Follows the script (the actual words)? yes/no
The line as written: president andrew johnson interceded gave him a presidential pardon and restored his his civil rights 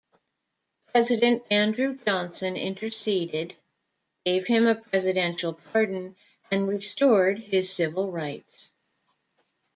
no